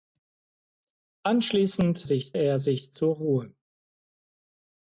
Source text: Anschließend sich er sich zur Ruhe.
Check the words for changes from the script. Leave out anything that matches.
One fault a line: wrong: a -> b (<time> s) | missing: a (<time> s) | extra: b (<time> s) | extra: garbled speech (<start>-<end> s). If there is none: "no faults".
no faults